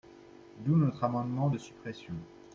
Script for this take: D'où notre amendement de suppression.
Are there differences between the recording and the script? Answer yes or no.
no